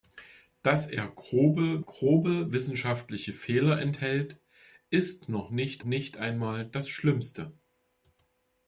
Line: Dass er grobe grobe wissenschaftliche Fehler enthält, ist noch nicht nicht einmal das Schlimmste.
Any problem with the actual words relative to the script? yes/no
no